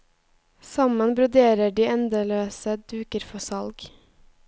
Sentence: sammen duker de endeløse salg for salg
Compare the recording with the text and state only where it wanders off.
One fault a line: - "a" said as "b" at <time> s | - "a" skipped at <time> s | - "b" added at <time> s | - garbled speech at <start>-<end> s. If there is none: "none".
- "duker" said as "broderer" at 1.2 s
- "salg" said as "duker" at 2.9 s